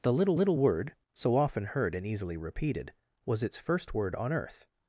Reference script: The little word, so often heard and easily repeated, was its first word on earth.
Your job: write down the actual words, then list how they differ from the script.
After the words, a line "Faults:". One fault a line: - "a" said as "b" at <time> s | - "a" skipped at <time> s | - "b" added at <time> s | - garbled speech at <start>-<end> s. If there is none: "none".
The little little word, so often heard and easily repeated, was its first word on earth.
Faults:
- "little" added at 0.3 s